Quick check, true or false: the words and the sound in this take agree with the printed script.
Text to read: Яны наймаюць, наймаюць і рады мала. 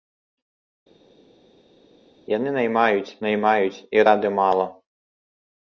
true